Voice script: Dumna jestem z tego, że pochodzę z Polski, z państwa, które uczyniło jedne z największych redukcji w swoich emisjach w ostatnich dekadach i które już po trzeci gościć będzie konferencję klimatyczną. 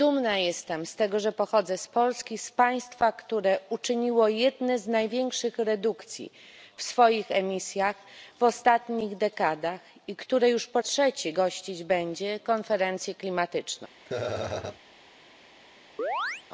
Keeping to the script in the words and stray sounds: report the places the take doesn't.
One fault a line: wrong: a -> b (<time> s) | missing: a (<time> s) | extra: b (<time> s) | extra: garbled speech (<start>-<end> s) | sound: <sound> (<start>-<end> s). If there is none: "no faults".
sound: laugh (14.1-14.8 s)
sound: chirp (16.0-16.4 s)